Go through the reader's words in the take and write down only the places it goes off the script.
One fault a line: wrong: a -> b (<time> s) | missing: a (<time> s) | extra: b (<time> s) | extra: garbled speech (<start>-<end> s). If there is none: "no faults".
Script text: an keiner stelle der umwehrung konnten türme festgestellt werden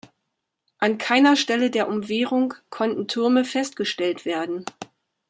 no faults